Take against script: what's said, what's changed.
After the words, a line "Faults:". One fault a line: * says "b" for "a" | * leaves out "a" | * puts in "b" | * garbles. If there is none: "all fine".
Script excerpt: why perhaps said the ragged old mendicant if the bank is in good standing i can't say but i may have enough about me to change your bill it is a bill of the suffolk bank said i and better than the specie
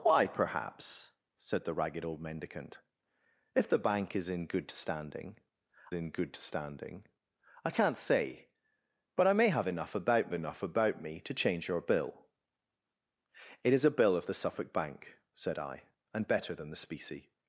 why perhaps said the ragged old mendicant if the bank is in good standing in good standing i can't say but i may have enough about enough about me to change your bill it is a bill of the suffolk bank said i and better than the specie
Faults:
* puts in "in good standing"
* puts in "enough about"